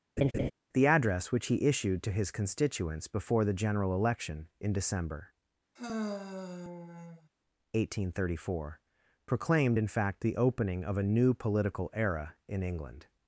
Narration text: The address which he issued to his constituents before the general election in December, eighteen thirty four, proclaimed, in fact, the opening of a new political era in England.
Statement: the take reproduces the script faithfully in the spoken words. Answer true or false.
true